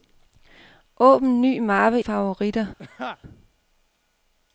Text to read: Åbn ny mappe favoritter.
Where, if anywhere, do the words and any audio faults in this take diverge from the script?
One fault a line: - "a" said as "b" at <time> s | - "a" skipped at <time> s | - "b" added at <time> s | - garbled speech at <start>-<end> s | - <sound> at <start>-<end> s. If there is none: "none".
- laugh at 2.8-3.2 s